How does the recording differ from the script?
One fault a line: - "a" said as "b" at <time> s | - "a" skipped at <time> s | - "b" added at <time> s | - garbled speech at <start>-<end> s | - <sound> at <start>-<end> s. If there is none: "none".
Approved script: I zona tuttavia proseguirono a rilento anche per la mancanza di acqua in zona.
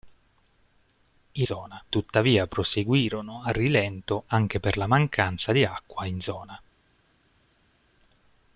none